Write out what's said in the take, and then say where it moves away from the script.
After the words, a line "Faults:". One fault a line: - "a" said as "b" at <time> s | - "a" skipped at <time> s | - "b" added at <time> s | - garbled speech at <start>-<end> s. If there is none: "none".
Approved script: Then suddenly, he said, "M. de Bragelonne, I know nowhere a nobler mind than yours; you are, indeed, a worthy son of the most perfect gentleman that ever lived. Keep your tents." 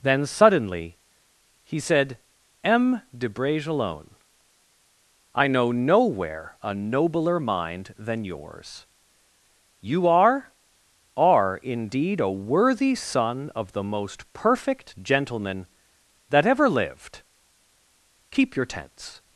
Then suddenly, he said, "M. de Bragelonne, I know nowhere a nobler mind than yours; you are are, indeed, a worthy son of the most perfect gentleman that ever lived. Keep your tents."
Faults:
- "are" added at 11.2 s